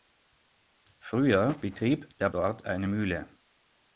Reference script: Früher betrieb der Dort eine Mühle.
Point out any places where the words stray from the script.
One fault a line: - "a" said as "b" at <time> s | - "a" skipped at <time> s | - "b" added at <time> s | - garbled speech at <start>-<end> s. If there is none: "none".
none